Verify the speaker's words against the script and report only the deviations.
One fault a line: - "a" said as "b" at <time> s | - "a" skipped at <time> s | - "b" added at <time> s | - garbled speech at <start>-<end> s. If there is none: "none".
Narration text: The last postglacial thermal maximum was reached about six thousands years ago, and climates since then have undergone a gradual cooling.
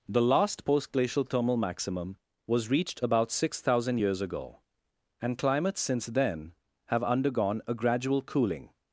- "thousands" said as "thousand" at 3.6 s